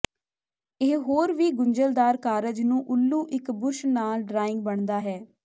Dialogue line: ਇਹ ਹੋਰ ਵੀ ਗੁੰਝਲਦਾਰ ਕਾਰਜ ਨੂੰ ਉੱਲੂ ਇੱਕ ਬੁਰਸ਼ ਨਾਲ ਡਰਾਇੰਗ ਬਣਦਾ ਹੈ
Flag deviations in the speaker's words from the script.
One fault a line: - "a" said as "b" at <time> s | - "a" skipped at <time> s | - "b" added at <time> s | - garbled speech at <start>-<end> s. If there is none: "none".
none